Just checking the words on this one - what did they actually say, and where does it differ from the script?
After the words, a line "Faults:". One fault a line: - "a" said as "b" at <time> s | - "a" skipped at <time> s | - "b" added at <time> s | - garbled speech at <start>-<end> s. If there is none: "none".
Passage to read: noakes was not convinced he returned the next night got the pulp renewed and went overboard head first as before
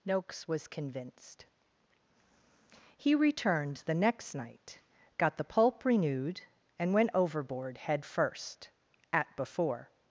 noakes was convinced he returned the next night got the pulp renewed and went overboard head first at before
Faults:
- "not" skipped at 0.7 s
- "as" said as "at" at 9.1 s